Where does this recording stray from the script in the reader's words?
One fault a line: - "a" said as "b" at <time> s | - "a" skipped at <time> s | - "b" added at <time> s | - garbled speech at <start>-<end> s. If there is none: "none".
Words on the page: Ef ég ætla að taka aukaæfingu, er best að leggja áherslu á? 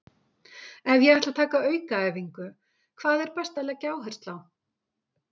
- "hvað" added at 3.0 s